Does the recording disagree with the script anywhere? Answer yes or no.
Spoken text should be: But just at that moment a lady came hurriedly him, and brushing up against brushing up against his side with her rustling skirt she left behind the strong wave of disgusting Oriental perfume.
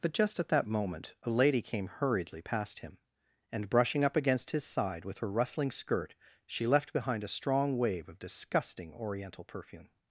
yes